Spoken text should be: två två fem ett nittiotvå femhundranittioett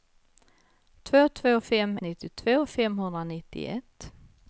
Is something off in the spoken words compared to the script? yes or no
yes